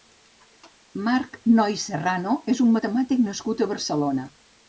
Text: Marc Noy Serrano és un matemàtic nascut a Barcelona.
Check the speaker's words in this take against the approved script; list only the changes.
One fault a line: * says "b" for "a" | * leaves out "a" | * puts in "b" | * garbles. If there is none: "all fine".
all fine